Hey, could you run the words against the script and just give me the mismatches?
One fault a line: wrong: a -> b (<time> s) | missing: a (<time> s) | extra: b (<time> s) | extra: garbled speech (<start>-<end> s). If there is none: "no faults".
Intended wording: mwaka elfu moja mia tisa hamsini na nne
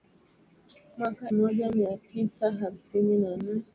missing: elfu (1.3 s)